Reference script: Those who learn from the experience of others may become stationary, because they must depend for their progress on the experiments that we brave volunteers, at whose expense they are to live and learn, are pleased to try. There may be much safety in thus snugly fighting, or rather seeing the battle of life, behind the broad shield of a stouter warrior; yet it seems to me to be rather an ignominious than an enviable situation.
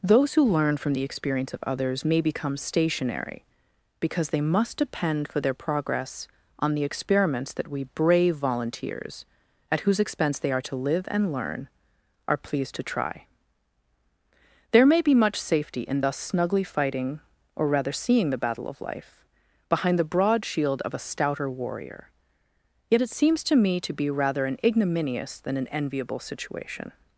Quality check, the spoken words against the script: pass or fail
pass